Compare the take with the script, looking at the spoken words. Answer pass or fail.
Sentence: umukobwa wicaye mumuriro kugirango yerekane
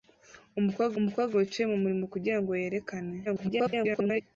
fail